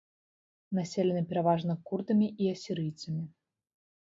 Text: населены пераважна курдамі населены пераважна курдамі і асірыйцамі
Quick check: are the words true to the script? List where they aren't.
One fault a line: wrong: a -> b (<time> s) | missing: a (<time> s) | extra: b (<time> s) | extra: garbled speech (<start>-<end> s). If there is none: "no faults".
missing: населены пераважна курдамі (2.3 s)